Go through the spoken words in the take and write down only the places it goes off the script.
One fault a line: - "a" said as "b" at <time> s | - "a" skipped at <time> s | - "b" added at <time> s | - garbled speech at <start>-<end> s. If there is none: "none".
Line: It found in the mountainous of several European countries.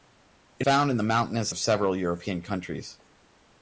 none